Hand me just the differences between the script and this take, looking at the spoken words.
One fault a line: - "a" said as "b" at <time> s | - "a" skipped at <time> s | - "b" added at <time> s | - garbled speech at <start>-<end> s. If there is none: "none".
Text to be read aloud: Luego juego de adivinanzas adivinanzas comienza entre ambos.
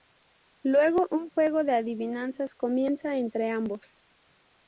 - "un" added at 1.1 s
- "adivinanzas" skipped at 2.5 s